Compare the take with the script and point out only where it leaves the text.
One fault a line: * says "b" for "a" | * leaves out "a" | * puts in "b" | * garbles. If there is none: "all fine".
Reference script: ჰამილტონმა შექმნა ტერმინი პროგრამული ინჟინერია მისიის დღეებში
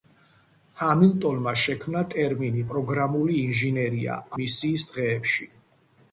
all fine